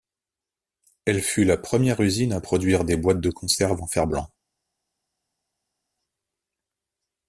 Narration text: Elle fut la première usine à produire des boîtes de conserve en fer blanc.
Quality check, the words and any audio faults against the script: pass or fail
pass